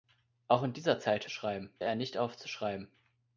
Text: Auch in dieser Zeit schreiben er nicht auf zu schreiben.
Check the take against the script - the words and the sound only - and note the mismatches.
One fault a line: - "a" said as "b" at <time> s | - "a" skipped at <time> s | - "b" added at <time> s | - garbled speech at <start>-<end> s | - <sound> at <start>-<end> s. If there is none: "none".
none